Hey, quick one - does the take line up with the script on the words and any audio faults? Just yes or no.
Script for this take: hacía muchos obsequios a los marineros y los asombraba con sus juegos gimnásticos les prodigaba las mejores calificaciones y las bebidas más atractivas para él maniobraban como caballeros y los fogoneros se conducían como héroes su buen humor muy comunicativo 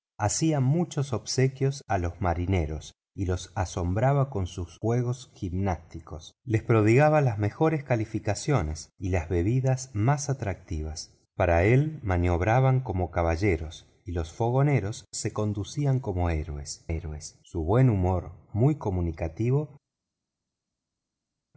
no